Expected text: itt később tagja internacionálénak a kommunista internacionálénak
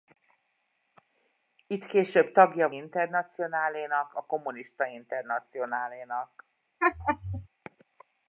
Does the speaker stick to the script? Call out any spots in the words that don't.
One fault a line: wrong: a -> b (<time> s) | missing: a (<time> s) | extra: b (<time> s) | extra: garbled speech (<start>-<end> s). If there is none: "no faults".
no faults